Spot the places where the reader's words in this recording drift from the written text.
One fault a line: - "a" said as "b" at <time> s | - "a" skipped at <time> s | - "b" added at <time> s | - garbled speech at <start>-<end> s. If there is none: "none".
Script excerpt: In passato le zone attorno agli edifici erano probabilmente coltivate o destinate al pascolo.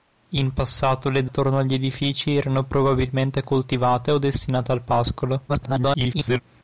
- "zone" skipped at 1.3 s
- garbled speech at 5.5-6.4 s